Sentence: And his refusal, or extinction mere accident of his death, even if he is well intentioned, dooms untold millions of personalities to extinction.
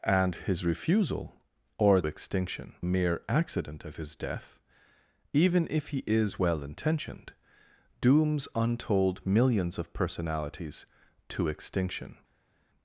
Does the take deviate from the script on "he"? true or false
false